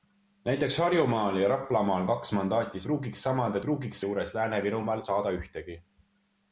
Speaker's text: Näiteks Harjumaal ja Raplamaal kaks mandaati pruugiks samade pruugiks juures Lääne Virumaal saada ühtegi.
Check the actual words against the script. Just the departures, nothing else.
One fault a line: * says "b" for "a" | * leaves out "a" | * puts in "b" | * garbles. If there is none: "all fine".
all fine